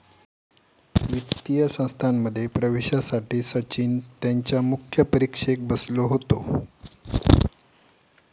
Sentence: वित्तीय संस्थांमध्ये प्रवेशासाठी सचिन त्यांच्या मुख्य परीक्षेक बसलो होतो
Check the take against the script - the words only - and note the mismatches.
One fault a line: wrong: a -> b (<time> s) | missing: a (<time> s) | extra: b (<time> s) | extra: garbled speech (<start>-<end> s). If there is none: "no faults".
no faults